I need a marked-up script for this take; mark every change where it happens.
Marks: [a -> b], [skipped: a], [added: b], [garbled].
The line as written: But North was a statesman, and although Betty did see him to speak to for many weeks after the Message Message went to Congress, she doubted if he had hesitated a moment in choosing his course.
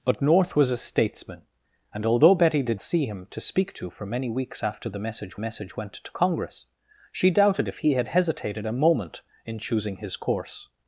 But North was a statesman, and although Betty did see him to speak to for many weeks after the Message Message went to Congress, she doubted if he had hesitated a moment in choosing his course.